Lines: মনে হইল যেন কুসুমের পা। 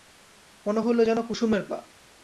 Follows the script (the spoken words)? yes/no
yes